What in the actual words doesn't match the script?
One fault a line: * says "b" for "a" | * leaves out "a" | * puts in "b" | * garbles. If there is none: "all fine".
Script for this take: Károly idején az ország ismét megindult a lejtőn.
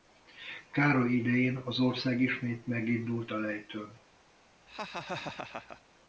all fine